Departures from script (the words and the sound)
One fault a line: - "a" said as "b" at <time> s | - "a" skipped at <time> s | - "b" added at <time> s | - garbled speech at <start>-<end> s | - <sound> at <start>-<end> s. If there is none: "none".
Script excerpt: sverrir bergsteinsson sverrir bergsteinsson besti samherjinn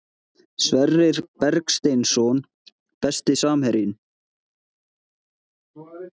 - "sverrir bergsteinsson" skipped at 2.4 s